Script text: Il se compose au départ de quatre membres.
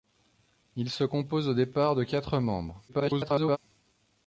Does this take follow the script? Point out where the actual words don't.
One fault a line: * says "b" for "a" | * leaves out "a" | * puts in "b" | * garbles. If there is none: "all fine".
* garbles